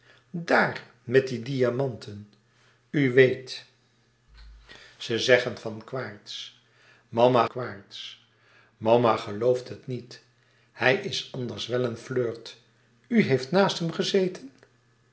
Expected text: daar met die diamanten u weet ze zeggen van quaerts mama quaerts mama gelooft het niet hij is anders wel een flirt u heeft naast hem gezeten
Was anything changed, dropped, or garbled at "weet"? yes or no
no